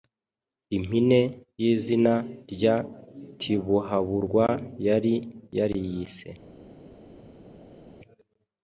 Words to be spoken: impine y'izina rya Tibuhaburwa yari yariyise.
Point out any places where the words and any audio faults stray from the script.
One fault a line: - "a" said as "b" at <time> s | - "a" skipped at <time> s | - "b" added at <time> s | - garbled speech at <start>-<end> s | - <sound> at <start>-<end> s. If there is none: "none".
none